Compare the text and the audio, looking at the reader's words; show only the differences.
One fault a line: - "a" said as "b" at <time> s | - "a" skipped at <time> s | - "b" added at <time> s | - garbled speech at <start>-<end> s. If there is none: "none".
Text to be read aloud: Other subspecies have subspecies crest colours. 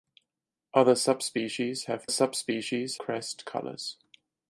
none